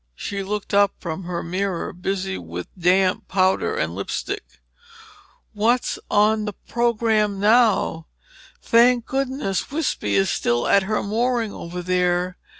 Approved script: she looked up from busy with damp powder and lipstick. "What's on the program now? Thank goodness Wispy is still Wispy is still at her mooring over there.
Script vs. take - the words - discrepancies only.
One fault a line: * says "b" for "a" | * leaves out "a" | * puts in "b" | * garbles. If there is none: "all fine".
* puts in "her mirror"
* leaves out "Wispy is still"